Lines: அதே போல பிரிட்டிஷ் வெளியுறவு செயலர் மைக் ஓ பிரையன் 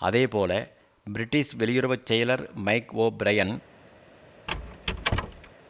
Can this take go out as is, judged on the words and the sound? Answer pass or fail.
fail